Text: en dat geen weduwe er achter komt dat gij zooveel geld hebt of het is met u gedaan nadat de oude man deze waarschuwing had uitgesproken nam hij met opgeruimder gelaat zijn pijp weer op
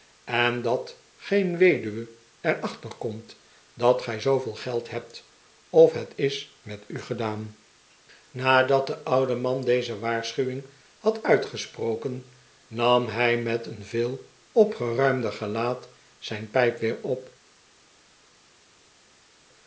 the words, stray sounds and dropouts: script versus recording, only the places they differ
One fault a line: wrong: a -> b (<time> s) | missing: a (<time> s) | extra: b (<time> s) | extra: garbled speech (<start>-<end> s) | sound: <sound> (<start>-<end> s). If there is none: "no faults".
extra: een veel (13.7 s)